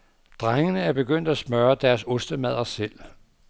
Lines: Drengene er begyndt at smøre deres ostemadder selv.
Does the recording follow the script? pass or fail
pass